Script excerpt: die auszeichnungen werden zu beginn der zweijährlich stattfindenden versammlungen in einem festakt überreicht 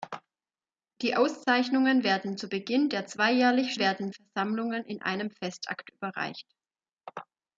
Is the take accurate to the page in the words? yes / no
no